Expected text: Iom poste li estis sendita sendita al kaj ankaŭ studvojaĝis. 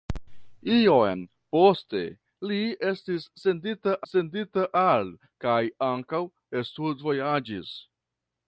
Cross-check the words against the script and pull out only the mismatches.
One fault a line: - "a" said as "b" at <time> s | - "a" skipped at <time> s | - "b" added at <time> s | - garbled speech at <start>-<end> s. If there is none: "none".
none